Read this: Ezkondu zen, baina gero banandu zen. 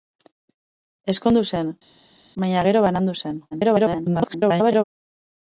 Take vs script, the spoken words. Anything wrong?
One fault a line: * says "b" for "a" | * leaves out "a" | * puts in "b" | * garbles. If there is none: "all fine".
* garbles